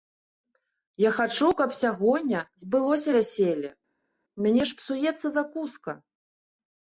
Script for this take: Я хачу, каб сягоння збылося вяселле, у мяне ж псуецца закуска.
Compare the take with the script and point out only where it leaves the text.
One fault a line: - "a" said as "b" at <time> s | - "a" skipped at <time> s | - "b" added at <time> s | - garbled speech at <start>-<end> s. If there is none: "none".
none